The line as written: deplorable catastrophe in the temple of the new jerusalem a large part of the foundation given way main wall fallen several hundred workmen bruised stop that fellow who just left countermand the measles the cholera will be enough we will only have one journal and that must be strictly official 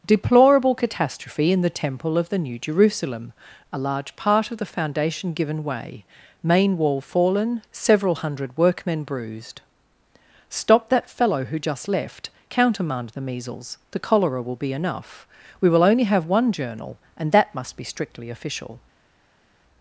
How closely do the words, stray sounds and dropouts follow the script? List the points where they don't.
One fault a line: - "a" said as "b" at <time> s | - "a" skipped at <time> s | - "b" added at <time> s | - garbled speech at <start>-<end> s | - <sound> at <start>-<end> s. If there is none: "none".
none